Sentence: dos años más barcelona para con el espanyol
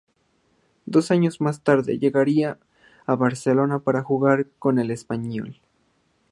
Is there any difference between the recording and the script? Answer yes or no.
yes